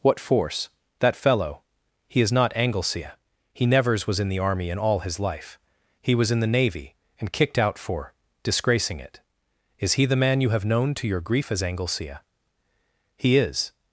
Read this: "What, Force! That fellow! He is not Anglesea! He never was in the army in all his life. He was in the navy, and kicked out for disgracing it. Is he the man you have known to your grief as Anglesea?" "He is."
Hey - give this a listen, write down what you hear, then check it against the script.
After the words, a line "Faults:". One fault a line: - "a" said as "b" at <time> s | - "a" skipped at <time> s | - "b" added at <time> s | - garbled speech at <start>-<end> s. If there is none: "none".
"What, Force! That fellow! He is not Anglesea! He nevers was in the army in all his life. He was in the navy, and kicked out for disgracing it. Is he the man you have known to your grief as Anglesea?" "He is."
Faults:
- "never" said as "nevers" at 3.6 s